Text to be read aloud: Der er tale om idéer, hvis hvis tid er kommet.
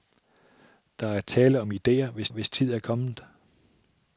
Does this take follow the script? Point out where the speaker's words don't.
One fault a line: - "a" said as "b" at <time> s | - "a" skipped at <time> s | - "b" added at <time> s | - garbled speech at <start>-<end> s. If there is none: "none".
none